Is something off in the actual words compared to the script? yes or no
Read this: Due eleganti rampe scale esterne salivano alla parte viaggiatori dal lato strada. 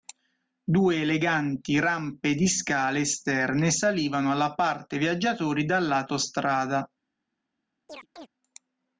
yes